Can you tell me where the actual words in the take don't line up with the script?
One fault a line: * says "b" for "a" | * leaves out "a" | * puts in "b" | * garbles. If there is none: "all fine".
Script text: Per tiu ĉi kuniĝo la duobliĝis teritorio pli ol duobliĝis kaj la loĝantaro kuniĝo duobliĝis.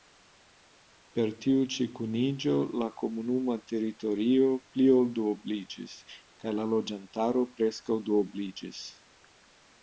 * says "komunuma" for "duobliĝis"
* says "preskaŭ" for "kuniĝo"